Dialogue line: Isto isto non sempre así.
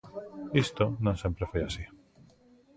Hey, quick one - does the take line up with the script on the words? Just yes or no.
no